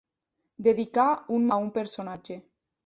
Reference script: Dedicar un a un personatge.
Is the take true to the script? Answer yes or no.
yes